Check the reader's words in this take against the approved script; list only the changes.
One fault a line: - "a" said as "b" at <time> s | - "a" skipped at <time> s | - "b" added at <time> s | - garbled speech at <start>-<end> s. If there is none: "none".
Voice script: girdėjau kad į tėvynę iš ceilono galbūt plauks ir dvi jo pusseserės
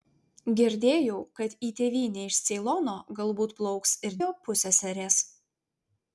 - "dvi" skipped at 4.2 s